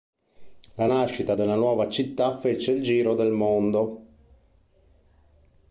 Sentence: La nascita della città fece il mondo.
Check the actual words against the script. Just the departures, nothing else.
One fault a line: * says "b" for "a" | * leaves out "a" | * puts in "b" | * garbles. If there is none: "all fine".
* puts in "nuova"
* puts in "giro del"